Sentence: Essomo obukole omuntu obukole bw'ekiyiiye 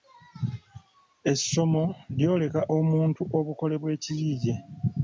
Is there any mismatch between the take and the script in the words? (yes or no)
yes